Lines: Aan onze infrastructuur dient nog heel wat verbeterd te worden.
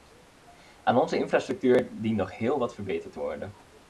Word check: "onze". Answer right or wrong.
right